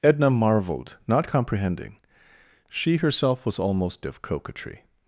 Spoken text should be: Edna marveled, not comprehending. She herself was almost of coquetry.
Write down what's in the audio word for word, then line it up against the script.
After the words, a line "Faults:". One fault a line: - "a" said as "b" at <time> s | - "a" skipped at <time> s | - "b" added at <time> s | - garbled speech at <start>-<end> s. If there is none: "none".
Edna marveled, not comprehending. She herself was almost of coquetry.
Faults:
none